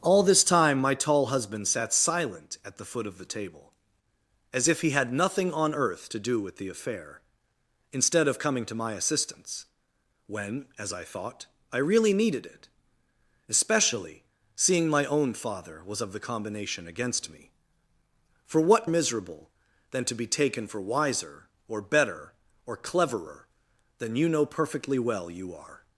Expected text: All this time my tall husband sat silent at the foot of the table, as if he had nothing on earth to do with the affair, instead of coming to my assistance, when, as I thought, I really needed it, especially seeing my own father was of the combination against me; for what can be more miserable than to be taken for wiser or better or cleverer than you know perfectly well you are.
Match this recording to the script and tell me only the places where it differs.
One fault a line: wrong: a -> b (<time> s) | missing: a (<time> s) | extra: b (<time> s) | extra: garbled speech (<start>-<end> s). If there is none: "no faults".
missing: can be more (18.9 s)